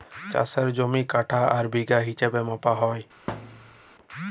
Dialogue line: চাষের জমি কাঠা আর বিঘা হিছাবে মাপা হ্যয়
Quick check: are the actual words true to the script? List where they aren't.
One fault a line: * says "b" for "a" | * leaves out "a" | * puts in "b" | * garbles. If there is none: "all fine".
all fine